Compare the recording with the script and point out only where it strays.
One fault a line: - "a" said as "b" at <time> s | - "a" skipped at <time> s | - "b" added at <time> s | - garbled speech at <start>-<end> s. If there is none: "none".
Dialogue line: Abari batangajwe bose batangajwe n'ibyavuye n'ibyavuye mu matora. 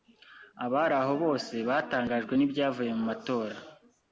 - "batangajwe" said as "aho" at 1.0 s
- "n'ibyavuye" skipped at 2.9 s